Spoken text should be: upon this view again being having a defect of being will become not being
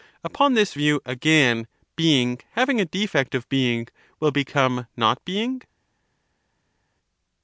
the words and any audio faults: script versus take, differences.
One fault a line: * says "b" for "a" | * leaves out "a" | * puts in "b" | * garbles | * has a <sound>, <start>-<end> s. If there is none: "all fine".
all fine